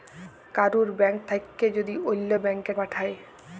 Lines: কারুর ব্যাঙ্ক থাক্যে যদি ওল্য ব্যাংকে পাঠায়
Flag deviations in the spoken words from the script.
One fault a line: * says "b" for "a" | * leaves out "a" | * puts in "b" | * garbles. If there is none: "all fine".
all fine